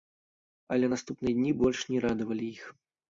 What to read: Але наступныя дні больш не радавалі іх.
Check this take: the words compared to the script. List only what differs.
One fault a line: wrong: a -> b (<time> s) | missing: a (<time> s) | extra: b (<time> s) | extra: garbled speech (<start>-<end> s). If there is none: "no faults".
no faults